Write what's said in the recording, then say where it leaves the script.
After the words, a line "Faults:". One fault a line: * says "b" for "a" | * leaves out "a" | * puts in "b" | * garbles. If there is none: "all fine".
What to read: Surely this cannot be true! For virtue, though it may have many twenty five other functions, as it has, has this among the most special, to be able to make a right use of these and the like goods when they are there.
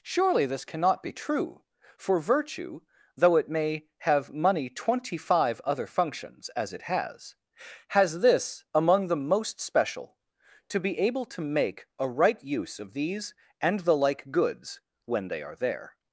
Surely this cannot be true! For virtue, though it may have money twenty five other functions, as it has, has this among the most special, to be able to make a right use of these and the like goods when they are there.
Faults:
* says "money" for "many"